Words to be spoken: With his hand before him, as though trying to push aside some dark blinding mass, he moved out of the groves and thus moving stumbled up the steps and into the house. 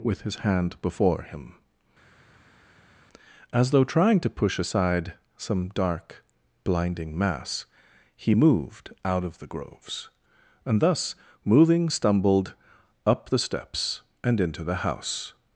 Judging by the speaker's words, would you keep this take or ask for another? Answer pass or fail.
pass